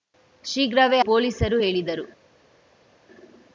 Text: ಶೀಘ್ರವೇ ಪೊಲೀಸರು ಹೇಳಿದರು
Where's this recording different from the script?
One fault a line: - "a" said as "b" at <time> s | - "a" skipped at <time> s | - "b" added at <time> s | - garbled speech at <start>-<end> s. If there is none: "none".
none